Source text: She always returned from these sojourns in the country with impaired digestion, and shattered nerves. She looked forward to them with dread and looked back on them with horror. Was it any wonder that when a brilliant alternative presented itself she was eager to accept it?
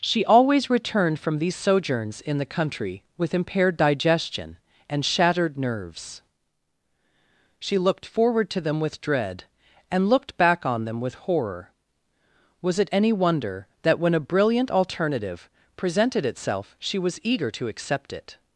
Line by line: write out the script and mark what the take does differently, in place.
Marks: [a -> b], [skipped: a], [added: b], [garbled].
She always returned from these sojourns in the country with impaired digestion, and shattered nerves. She looked forward to them with dread and looked back on them with horror. Was it any wonder that when a brilliant alternative presented itself she was eager to accept it?